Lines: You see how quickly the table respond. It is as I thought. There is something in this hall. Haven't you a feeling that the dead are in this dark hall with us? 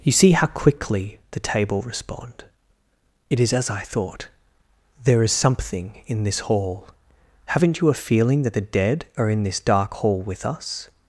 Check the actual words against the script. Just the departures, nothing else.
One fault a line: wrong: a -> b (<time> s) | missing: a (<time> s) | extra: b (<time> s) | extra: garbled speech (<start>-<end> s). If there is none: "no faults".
no faults